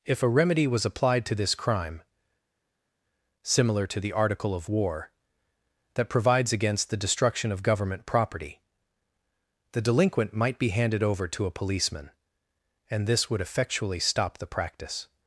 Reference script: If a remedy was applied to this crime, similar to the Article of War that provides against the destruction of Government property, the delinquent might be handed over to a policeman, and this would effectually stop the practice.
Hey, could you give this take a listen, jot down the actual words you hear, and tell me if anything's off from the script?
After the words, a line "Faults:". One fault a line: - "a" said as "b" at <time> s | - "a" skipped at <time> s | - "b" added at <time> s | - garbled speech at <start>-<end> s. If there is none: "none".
If a remedy was applied to this crime, similar to the Article of War that provides against the destruction of Government property, the delinquent might be handed over to a policeman, and this would effectually stop the practice.
Faults:
none